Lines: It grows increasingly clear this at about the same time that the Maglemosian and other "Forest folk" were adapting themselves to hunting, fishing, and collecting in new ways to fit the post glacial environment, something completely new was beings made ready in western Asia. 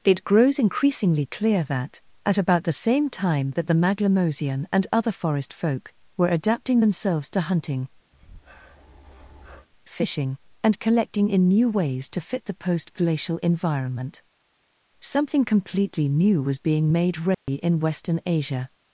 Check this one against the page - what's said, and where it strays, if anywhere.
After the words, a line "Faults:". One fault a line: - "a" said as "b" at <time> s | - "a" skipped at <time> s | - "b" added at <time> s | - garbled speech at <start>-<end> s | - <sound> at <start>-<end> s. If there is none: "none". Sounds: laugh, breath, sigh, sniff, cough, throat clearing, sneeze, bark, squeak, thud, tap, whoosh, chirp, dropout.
It grows increasingly clear that at about the same time that the Maglemosian and other "Forest folk" were adapting themselves to hunting, fishing, and collecting in new ways to fit the post glacial environment, something completely new was being made ready in western Asia.
Faults:
- "this" said as "that" at 1.6 s
- breath at 8.1-9.7 s
- "beings" said as "being" at 16.6 s
- dropout at 17.3-17.5 s